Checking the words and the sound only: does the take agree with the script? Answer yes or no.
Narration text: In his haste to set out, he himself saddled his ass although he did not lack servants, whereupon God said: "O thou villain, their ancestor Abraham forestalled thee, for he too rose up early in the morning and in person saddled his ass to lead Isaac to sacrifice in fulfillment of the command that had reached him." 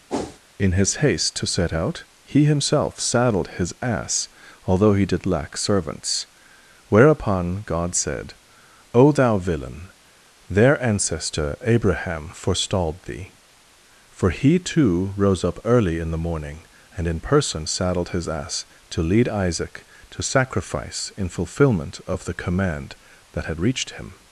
no